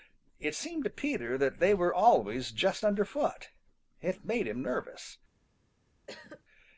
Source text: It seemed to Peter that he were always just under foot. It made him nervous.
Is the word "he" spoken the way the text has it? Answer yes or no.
no